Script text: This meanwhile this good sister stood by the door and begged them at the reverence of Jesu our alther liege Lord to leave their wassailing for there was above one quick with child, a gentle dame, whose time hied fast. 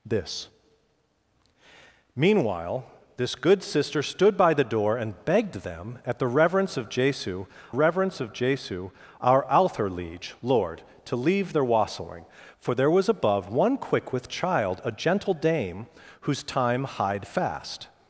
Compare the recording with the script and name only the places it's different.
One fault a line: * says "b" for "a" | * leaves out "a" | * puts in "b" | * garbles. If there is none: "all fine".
* puts in "reverence of Jesu"